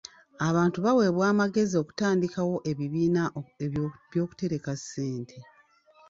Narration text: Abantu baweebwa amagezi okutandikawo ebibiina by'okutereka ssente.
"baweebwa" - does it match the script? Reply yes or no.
yes